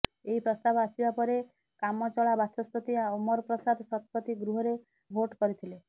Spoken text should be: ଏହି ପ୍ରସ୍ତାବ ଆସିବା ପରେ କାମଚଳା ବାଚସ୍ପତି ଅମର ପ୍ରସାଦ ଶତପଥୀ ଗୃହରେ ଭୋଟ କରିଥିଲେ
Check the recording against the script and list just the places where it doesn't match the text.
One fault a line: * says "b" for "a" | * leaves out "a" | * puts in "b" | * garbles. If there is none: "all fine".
all fine